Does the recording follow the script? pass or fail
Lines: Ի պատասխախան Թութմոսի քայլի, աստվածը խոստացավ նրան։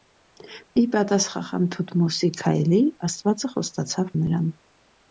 pass